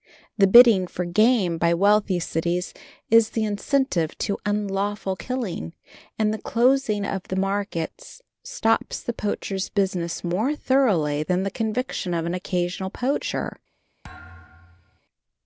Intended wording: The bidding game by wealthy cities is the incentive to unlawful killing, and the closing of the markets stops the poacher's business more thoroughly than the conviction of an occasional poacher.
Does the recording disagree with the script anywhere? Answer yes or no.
yes